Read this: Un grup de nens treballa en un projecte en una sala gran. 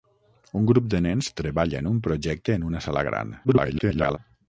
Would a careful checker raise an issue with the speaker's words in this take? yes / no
yes